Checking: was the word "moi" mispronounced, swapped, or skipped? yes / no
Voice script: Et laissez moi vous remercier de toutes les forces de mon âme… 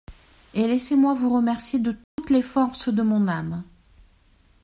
no